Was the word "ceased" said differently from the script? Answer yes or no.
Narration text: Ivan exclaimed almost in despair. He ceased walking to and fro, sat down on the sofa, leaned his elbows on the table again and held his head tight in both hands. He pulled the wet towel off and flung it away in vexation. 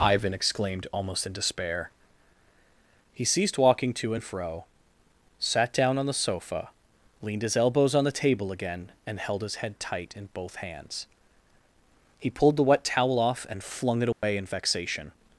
no